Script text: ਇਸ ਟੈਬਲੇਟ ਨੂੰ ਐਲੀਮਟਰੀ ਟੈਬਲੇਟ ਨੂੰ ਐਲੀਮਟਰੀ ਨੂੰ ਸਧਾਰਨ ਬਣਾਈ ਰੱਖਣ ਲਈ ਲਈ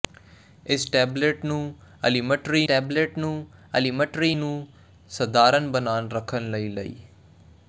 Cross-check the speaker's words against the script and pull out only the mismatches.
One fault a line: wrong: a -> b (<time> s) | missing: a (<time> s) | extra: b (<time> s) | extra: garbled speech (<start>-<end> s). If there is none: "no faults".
no faults